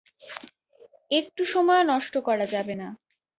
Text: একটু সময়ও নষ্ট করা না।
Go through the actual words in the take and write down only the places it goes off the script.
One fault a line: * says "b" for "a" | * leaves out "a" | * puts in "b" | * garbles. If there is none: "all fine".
* puts in "যাবে"